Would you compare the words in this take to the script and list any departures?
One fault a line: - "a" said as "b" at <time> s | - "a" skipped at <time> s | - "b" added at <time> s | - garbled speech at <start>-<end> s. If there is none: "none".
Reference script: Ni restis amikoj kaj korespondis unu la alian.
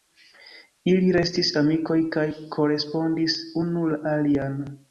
- "Ni" said as "Ili" at 0.9 s